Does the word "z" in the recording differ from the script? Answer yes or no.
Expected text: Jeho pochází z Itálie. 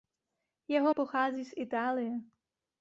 no